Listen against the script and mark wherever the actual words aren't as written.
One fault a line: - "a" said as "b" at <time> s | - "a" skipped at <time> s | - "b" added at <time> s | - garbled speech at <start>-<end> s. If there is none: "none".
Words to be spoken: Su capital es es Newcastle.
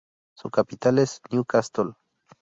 - "es" skipped at 1.2 s